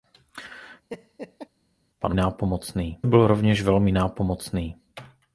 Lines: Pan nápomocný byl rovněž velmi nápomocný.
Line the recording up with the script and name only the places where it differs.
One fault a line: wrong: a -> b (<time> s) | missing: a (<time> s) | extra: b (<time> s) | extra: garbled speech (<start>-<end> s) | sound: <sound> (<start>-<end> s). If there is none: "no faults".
sound: laugh (0.9-1.5 s)